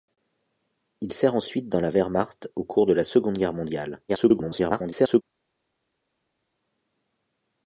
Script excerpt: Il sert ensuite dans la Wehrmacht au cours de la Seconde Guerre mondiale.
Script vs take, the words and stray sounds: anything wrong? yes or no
yes